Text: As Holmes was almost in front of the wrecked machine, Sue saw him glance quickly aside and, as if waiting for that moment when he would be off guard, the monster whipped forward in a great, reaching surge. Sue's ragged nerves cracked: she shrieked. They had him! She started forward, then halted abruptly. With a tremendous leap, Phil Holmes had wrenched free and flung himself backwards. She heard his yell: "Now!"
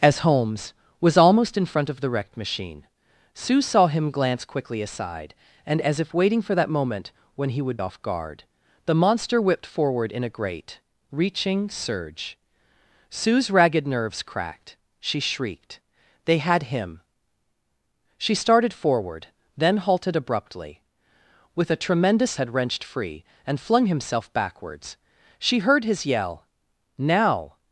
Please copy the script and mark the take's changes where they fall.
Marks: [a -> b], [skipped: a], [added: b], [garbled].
As Holmes was almost in front of the wrecked machine, Sue saw him glance quickly aside and, as if waiting for that moment when he would [skipped: be] off guard, the monster whipped forward in a great, reaching surge. Sue's ragged nerves cracked: she shrieked. They had him! She started forward, then halted abruptly. With a tremendous [skipped: leap, Phil Holmes] had wrenched free and flung himself backwards. She heard his yell: "Now!"